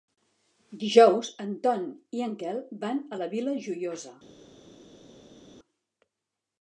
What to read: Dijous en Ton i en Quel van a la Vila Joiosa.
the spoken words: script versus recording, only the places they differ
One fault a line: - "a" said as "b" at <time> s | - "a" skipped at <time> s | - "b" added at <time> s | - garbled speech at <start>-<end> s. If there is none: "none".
none